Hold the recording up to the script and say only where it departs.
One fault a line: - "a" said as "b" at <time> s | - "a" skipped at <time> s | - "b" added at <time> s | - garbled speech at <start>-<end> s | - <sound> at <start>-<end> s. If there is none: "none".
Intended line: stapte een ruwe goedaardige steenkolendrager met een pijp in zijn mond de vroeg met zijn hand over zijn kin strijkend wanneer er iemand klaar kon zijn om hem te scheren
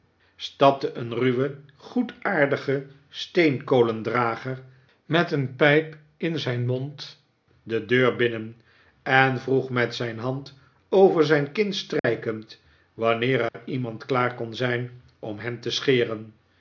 - "deur binnen en" added at 7.8 s
- dropout at 12.0-12.0 s
- dropout at 13.5-13.5 s